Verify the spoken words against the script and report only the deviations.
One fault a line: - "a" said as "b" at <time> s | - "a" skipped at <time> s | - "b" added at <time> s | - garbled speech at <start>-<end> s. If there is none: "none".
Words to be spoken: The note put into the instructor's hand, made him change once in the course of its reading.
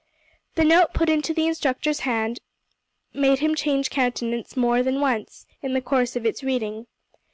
- "countenance more than" added at 3.9 s